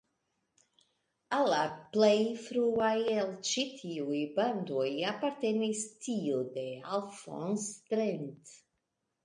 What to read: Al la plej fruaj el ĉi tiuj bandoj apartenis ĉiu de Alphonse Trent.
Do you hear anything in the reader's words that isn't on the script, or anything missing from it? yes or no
yes